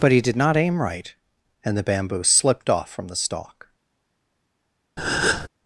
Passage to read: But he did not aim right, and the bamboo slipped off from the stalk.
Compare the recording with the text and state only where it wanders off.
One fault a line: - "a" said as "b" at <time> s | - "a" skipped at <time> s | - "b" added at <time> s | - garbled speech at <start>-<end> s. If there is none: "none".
none